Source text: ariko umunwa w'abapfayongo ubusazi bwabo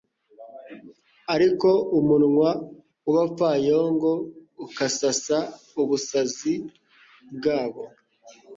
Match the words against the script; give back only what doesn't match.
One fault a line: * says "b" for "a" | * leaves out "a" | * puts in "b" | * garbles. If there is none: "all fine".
* puts in "ukasasa"